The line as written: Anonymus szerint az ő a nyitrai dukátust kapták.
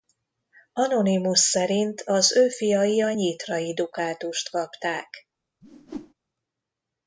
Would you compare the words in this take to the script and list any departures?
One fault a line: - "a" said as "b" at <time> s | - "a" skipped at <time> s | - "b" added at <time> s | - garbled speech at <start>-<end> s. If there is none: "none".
- "fiai" added at 2.5 s